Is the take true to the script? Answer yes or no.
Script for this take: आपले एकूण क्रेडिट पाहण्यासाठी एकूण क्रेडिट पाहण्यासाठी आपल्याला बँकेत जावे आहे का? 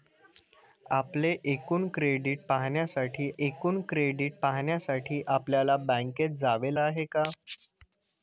yes